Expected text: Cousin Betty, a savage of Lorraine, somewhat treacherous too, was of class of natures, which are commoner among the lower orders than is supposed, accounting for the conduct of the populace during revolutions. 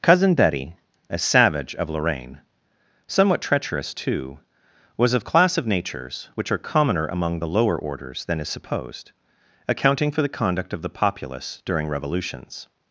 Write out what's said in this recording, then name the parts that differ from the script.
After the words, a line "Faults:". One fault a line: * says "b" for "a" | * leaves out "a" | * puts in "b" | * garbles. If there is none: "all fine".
Cousin Betty, a savage of Lorraine, somewhat treacherous too, was of class of natures, which are commoner among the lower orders than is supposed, accounting for the conduct of the populace during revolutions.
Faults:
all fine